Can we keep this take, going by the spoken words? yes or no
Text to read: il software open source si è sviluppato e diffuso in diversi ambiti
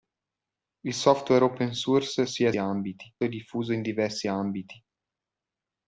no